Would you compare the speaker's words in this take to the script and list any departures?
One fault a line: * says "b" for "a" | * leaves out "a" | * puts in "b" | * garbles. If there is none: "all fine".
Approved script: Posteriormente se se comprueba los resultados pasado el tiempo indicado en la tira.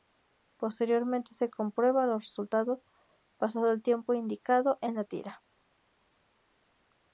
* leaves out "se"